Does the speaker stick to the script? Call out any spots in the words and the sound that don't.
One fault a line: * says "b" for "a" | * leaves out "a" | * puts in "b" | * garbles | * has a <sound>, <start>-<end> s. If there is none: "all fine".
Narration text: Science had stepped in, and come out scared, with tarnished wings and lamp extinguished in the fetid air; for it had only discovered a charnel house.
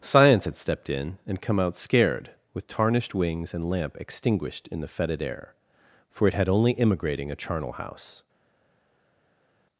* says "immigrating" for "discovered"